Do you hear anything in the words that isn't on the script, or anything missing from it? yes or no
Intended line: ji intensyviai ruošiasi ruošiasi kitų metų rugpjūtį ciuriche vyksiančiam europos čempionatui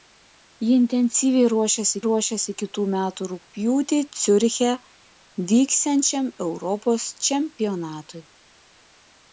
no